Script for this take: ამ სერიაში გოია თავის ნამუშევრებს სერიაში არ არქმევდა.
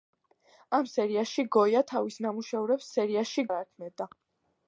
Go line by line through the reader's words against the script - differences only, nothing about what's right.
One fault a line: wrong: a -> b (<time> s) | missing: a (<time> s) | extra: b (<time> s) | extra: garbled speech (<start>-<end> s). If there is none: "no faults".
no faults